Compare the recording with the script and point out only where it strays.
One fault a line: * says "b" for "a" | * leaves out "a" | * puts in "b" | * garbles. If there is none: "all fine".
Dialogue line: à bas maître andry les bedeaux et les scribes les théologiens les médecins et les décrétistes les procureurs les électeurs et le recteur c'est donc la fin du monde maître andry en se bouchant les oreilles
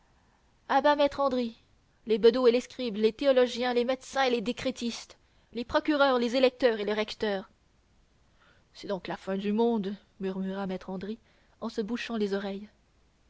* puts in "murmura"